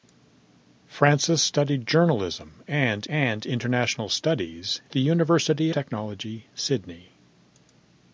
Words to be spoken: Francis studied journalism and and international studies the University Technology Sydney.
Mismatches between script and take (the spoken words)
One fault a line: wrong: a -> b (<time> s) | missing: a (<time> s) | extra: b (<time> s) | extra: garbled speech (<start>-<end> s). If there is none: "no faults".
no faults